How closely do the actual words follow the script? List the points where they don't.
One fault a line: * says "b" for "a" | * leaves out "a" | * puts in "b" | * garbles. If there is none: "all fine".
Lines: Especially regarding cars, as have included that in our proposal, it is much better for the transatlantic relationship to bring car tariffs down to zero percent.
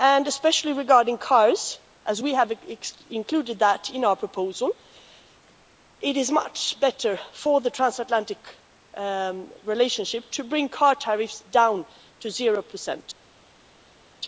* puts in "we"